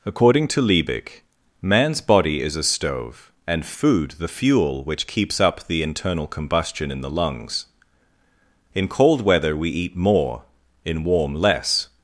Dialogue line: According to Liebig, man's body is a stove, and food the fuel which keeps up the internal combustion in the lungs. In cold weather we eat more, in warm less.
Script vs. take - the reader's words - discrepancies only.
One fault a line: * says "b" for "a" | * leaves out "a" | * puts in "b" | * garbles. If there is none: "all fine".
all fine